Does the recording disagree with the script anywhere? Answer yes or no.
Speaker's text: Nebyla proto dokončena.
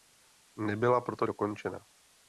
no